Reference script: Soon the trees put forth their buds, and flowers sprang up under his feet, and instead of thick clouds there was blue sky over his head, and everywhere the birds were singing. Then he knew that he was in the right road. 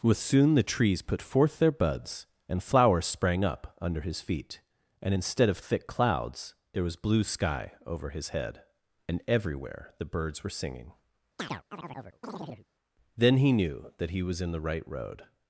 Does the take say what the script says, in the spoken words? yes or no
no